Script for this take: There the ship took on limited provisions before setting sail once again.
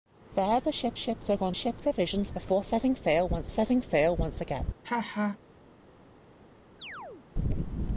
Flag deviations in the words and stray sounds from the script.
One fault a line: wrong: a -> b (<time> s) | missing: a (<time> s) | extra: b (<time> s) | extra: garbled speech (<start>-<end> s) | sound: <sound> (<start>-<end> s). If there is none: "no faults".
extra: ship (0.9 s)
wrong: limited -> ship (1.5 s)
extra: setting sail once (3.5 s)
sound: laugh (4.8-5.4 s)
sound: chirp (6.8-7.3 s)